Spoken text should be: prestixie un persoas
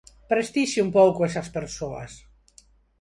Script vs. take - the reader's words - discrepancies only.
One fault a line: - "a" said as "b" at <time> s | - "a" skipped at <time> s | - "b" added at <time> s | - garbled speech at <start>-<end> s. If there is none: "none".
- "pouco esas" added at 1.0 s